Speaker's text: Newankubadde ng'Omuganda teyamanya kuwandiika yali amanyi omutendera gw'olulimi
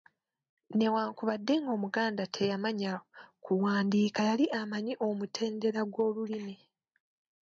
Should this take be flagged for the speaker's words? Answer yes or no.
no